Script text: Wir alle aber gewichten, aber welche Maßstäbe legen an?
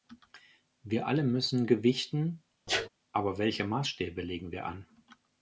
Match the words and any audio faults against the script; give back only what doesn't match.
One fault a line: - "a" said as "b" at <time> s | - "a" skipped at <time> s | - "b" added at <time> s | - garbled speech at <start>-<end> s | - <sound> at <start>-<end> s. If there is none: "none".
- "aber" said as "müssen" at 1.2 s
- sneeze at 2.7-2.9 s
- "wir" added at 4.5 s